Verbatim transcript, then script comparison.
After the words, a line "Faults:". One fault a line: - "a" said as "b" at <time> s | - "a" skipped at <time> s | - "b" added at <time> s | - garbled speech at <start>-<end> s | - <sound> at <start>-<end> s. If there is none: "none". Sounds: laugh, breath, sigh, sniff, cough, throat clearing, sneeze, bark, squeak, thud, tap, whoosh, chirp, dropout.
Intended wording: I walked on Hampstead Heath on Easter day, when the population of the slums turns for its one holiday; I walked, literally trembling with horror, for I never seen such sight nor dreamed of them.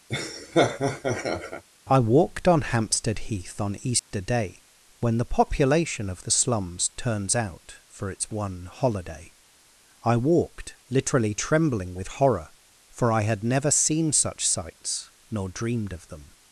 I walked on Hampstead Heath on Easter day, when the population of the slums turns out for its one holiday; I walked, literally trembling with horror, for I had never seen such sights nor dreamed of them.
Faults:
- laugh at 0.1-1.6 s
- dropout at 4.0-4.1 s
- "out" added at 7.3 s
- "had" added at 13.2 s
- "sight" said as "sights" at 14.5 s